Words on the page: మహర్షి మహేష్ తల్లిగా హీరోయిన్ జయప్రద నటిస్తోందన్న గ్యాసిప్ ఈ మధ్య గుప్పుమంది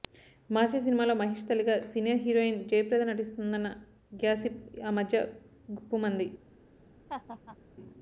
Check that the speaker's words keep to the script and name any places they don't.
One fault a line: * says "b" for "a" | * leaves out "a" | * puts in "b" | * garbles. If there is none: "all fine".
* puts in "సినిమాలో"
* puts in "సీనియర్"
* says "ఆ" for "ఈ"